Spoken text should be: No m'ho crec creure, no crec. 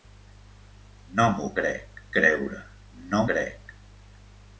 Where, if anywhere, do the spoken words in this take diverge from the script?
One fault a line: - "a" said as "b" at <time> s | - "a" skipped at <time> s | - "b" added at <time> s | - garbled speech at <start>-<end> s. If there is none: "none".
none